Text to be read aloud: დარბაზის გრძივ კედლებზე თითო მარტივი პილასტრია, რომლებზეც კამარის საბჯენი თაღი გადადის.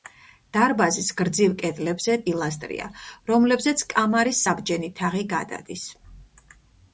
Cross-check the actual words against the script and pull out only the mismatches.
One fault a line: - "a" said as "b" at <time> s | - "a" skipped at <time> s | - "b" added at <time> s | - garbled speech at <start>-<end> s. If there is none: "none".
- "თითო მარტივი" skipped at 2.1 s